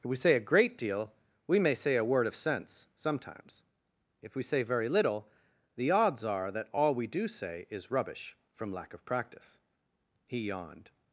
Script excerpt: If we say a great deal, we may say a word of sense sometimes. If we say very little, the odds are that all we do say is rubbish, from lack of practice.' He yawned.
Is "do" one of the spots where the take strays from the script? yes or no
no